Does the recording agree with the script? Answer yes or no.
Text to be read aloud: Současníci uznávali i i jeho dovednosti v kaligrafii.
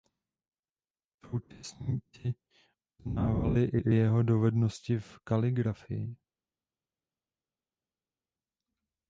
yes